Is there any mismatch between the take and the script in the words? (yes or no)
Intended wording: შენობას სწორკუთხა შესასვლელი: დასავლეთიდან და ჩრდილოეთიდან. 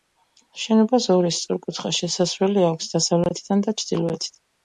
yes